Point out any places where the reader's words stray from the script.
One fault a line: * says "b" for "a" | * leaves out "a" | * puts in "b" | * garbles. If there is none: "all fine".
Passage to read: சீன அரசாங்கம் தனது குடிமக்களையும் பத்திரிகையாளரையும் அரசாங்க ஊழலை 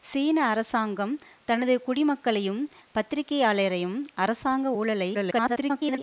* garbles